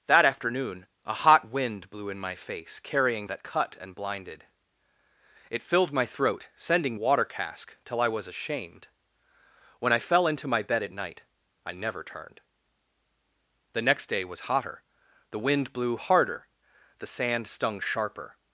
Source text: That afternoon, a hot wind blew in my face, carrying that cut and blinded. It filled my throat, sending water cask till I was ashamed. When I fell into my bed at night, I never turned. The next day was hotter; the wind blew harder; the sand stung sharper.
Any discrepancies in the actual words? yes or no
no